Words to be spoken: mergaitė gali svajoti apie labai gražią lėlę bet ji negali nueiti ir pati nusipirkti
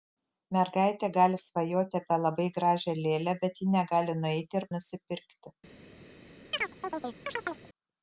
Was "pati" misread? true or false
true